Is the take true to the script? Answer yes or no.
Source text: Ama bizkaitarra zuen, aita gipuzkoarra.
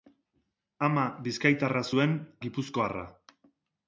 no